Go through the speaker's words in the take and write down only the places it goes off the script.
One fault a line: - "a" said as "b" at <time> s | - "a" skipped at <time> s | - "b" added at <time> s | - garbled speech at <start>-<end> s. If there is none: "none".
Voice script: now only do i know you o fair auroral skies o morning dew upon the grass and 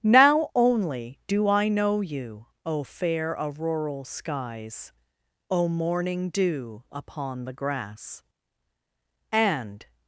none